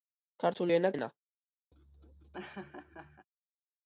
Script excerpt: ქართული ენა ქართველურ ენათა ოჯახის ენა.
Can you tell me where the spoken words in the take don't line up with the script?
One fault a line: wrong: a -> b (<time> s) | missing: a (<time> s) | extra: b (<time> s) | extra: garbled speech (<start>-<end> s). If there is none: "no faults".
missing: ქართველურ ენათა ოჯახის (0.9 s)